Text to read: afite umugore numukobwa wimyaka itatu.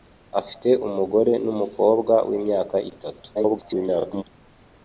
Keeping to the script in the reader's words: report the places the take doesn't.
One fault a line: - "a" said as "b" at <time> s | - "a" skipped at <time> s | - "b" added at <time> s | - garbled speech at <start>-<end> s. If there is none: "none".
- garbled speech at 3.3-4.2 s